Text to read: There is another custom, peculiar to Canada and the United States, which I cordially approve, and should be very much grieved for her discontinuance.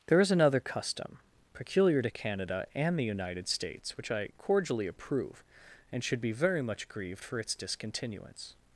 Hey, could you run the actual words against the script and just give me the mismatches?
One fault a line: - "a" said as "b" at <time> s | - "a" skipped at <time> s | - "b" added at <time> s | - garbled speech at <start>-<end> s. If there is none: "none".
- "her" said as "its" at 7.4 s